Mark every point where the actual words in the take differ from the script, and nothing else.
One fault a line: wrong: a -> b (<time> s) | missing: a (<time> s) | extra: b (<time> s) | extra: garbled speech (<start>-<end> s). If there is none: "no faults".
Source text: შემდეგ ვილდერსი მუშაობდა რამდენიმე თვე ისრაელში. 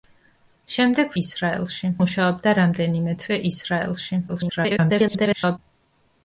wrong: ვილდერსი -> ისრაელში (1.2 s)
extra: garbled speech (4.3-5.6 s)